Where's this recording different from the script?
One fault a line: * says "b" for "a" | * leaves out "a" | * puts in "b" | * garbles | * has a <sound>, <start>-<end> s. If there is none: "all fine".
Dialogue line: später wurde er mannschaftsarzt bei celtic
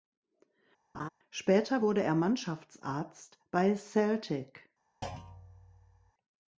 * has a laugh, 0.9-1.1 s
* has a thud, 5.0-6.1 s